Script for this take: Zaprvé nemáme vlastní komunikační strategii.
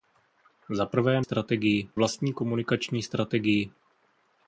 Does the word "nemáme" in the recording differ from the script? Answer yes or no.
yes